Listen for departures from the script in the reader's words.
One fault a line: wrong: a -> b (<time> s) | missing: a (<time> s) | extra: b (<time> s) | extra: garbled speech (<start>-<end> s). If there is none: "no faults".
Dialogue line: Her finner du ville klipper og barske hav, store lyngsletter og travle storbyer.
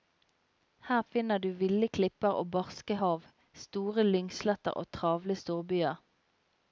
no faults